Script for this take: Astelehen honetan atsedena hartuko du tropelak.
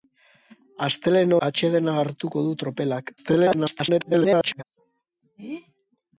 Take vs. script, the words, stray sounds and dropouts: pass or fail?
fail